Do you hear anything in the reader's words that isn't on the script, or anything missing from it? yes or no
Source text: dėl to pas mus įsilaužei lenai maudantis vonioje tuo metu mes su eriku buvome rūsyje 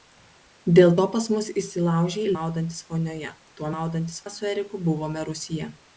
yes